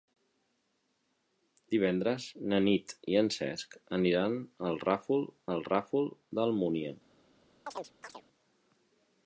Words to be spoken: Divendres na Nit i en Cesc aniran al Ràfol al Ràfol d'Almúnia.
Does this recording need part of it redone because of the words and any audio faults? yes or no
yes